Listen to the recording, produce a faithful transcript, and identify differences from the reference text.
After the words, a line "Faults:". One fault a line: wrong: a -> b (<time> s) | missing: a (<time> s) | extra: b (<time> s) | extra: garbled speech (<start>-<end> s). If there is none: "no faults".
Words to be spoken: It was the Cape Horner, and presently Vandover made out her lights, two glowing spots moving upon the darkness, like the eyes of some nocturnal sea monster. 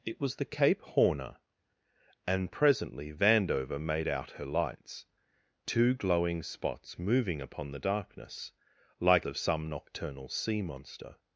It was the Cape Horner, and presently Vandover made out her lights, two glowing spots moving upon the darkness, like of some nocturnal sea monster.
Faults:
missing: the eyes (9.3 s)